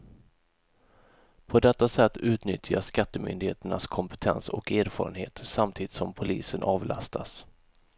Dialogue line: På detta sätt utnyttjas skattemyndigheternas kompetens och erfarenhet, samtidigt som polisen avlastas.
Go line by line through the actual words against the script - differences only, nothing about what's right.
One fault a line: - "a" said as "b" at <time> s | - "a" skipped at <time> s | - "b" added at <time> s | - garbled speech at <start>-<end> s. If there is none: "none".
none